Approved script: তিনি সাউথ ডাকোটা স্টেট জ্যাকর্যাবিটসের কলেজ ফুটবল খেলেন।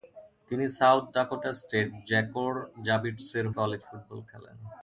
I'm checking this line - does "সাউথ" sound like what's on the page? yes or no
yes